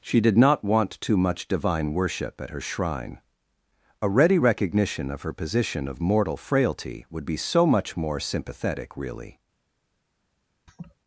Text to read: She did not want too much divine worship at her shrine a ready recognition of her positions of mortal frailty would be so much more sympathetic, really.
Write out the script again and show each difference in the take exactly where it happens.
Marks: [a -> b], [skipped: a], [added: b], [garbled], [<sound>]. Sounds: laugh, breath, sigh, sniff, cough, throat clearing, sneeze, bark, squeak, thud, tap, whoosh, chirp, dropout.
She did not want too much divine worship at her shrine a ready recognition of her [positions -> position] of mortal frailty would be so much more sympathetic, really. [laugh]